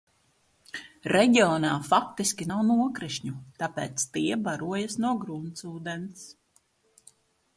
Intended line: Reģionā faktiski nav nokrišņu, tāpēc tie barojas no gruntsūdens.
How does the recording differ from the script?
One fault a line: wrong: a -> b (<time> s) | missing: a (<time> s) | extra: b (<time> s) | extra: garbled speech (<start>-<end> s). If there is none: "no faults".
no faults